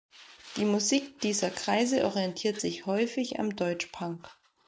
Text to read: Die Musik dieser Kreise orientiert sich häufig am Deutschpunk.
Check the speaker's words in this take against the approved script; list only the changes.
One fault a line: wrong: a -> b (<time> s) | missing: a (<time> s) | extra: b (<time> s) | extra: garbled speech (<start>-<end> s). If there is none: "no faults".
no faults